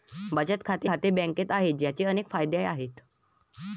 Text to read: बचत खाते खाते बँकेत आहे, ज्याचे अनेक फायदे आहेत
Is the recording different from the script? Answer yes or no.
no